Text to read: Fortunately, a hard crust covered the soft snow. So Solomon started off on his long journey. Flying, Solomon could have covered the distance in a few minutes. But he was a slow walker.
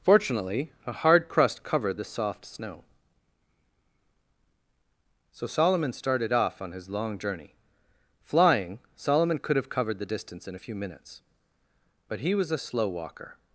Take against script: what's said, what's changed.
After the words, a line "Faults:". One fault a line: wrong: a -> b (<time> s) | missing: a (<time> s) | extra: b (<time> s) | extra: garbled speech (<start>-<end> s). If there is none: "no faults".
Fortunately, a hard crust covered the soft snow. So Solomon started off on his long journey. Flying, Solomon could have covered the distance in a few minutes. But he was a slow walker.
Faults:
no faults